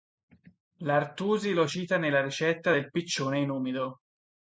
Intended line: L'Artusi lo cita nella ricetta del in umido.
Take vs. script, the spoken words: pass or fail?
fail